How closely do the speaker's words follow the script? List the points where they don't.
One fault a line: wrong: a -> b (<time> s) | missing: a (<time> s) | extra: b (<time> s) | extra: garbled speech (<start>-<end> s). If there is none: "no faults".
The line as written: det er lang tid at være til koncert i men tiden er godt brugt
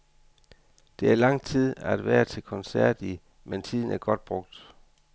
no faults